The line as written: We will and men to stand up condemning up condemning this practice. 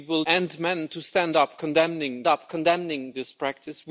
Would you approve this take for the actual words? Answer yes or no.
yes